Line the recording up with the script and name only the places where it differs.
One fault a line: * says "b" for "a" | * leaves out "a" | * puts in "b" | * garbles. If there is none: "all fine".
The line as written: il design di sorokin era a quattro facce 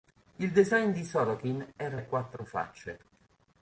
all fine